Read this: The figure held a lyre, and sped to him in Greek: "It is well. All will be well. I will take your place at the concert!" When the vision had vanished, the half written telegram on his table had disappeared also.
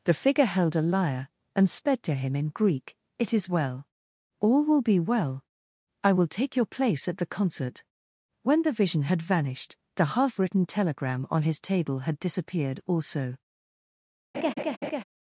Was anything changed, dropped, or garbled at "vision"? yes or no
no